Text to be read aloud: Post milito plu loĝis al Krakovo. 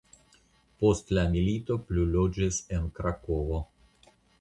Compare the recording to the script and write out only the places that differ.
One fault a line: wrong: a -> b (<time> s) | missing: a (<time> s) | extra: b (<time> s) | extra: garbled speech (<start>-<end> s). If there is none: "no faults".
extra: la (1.2 s)
wrong: al -> en (2.8 s)